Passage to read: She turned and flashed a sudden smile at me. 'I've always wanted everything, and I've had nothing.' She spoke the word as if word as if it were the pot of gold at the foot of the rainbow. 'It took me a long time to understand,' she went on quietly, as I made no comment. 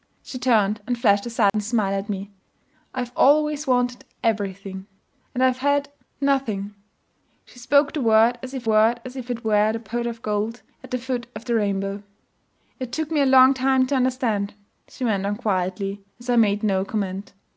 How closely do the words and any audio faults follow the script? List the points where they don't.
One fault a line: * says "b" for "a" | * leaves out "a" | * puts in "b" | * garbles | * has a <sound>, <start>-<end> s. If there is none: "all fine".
* has a dropout, 1.5-1.5 s